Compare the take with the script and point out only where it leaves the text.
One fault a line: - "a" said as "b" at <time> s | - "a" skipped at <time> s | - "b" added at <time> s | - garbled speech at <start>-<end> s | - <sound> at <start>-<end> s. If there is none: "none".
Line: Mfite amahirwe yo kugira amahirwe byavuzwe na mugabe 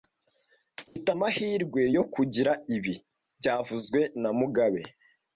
- dropout at 0.9-1.0 s
- "amahirwe" said as "ibi" at 2.8 s